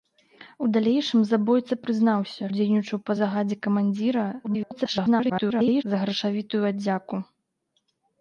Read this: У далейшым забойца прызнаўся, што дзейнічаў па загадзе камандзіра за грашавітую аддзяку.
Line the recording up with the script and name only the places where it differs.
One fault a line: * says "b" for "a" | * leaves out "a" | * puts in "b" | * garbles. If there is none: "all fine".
* leaves out "што"
* garbles